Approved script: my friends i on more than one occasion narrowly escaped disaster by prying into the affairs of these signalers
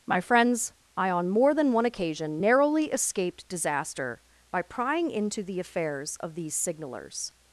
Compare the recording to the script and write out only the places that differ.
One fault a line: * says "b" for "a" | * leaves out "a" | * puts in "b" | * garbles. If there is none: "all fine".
all fine